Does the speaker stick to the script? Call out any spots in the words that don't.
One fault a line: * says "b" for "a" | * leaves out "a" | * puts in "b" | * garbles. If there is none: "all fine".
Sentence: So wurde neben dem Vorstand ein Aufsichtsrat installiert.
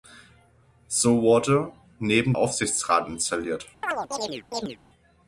* leaves out "dem Vorstand ein"